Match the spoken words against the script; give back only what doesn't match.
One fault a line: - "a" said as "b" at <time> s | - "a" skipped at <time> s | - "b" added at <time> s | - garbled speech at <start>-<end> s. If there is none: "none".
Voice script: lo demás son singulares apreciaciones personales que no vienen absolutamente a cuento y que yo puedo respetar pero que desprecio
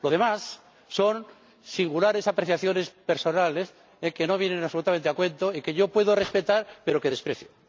none